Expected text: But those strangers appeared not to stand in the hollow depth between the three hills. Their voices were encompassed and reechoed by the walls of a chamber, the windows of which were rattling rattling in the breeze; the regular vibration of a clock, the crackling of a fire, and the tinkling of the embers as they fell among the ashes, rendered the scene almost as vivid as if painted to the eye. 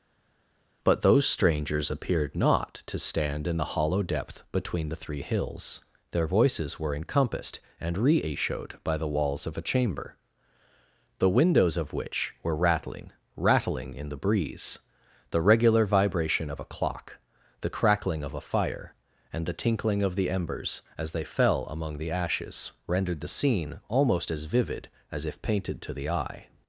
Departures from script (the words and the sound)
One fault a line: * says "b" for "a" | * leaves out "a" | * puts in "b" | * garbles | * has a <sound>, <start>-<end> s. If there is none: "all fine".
all fine